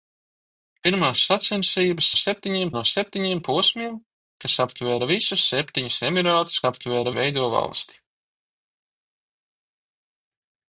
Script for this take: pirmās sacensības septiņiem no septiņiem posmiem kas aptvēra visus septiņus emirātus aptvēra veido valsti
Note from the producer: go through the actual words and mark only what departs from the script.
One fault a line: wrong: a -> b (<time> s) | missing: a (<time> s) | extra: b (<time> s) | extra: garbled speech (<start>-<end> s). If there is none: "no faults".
no faults